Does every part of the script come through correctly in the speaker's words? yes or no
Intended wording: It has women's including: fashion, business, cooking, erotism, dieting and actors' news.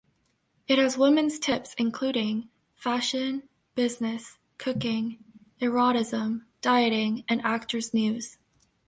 no